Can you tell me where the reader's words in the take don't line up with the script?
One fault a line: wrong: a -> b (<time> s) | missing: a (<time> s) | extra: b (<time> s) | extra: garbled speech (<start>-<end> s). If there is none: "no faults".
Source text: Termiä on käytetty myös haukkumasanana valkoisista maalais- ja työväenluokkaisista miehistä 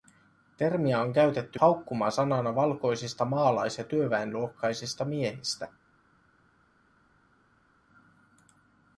missing: myös (1.6 s)